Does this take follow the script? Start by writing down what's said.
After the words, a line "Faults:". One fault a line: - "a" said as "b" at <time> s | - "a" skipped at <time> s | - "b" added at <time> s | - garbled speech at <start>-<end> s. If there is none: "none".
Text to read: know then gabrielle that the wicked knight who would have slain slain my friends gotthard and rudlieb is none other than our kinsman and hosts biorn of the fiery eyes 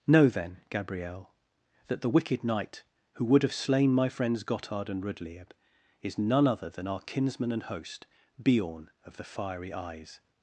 know then gabrielle that the wicked knight who would have slain my friends gotthard and rudlieb is none other than our kinsman and host biorn of the fiery eyes
Faults:
- "slain" skipped at 3.9 s
- "hosts" said as "host" at 7.6 s